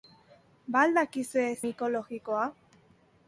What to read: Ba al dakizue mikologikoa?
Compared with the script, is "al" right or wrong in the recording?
right